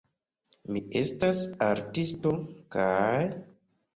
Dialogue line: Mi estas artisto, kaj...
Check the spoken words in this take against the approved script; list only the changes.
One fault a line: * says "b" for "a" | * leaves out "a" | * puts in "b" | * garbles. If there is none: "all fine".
all fine